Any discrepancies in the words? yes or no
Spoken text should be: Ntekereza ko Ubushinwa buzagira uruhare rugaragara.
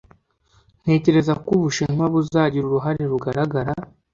no